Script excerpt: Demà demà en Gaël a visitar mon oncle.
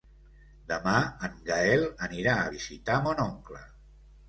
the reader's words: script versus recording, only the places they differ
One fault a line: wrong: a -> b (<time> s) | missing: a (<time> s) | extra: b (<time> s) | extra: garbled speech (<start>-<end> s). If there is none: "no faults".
missing: demà (0.9 s)
extra: anirà (2.1 s)